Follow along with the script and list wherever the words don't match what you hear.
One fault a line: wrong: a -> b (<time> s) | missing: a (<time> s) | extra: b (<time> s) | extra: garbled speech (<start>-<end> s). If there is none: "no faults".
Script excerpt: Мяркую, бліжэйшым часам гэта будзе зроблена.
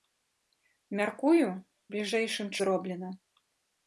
missing: часам гэта будзе (2.5 s)